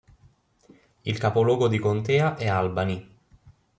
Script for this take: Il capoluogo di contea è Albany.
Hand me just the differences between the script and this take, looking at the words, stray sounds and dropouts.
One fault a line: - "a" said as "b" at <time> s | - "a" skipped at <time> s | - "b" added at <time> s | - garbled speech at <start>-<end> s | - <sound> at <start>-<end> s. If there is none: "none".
none